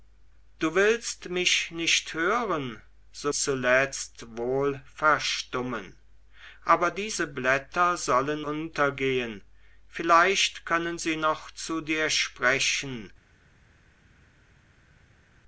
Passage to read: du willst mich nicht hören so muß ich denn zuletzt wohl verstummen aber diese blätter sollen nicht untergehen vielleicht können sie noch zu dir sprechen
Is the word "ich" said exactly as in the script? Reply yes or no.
no